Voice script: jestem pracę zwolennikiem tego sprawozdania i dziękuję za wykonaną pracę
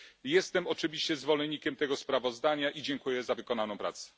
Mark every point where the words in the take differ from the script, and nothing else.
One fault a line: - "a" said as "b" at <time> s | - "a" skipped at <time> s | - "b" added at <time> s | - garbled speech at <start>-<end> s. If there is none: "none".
- "pracę" said as "oczywiście" at 0.7 s